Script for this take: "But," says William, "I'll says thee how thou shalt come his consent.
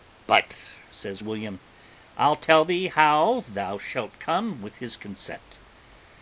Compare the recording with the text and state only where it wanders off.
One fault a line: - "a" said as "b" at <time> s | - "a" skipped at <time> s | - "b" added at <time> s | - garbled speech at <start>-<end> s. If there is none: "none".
- "says" said as "tell" at 2.4 s
- "with" added at 4.6 s